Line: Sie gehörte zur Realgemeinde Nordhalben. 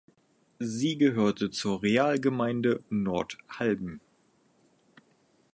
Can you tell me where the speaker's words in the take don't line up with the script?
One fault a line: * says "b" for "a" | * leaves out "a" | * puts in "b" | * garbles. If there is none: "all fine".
all fine